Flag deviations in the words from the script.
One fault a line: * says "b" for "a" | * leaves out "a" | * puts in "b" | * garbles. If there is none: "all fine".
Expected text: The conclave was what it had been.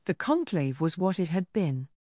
all fine